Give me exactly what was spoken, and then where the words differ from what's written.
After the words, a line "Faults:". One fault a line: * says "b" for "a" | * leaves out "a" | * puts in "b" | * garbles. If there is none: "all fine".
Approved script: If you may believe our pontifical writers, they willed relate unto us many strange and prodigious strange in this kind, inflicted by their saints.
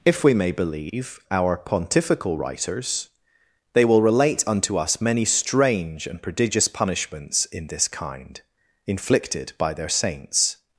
If we may believe our pontifical writers, they will relate unto us many strange and prodigious punishments in this kind, inflicted by their saints.
Faults:
* says "we" for "you"
* says "will" for "willed"
* says "punishments" for "strange"